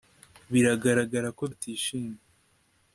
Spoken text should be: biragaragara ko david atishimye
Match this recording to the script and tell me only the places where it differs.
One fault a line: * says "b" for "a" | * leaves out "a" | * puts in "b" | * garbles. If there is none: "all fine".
* leaves out "david"